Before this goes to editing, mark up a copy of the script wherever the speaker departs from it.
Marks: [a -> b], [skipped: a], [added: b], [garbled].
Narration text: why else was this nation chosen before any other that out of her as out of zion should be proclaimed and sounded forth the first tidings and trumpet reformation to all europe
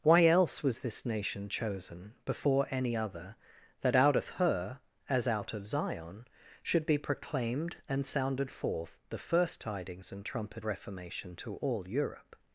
why else was this nation chosen before any other that out of her as out of zion should be proclaimed and sounded forth the first tidings and trumpet reformation to all europe